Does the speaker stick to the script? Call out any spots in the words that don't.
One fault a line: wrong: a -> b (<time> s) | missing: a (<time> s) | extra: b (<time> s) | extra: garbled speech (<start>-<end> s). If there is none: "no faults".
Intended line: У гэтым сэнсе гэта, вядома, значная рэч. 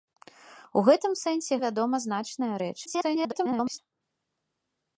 missing: гэта (1.5 s)
extra: garbled speech (2.9-3.8 s)